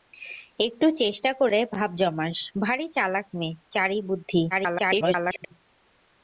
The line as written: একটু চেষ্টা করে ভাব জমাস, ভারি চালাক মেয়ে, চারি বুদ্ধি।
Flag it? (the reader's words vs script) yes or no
yes